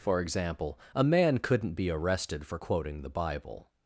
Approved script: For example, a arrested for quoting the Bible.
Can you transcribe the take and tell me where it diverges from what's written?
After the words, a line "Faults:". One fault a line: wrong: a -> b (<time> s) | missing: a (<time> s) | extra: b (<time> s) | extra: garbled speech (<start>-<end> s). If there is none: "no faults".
For example, a man couldn't be arrested for quoting the Bible.
Faults:
extra: man couldn't be (1.0 s)